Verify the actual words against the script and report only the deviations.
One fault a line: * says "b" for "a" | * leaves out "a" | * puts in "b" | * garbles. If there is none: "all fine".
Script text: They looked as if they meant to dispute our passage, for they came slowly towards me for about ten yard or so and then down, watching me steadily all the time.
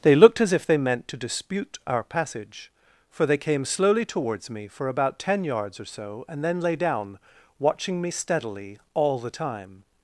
* says "yards" for "yard"
* puts in "lay"